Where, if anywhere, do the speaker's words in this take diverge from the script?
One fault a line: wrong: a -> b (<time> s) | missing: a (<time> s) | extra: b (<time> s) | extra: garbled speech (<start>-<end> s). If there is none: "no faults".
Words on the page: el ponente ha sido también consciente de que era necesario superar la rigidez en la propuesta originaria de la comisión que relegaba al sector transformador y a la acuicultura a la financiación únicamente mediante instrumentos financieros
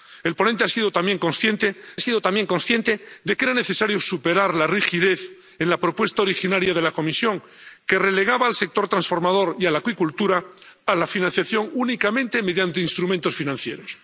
extra: sido también consciente (2.0 s)